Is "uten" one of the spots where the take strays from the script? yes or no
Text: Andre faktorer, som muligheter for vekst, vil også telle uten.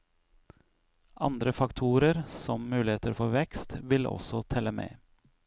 yes